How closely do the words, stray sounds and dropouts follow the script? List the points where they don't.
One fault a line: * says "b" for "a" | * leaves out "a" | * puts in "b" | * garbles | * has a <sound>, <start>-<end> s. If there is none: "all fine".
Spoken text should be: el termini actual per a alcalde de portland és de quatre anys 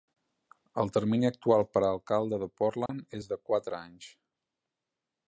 * has a dropout, 2.9-2.9 s